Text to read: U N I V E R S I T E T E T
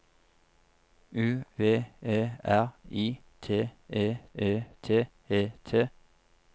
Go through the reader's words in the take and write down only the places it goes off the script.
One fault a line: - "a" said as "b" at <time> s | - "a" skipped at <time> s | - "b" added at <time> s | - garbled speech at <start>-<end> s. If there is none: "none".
- "N I" skipped at 1.4 s
- "S" skipped at 2.7 s
- "E" added at 4.3 s